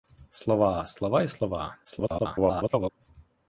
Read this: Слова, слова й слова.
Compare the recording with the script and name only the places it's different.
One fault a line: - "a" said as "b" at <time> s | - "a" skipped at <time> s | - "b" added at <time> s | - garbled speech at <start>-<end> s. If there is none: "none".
- garbled speech at 1.8-2.9 s